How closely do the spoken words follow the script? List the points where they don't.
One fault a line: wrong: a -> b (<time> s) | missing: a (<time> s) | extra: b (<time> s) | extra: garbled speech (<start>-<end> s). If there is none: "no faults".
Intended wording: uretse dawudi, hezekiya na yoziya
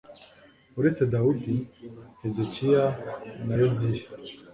no faults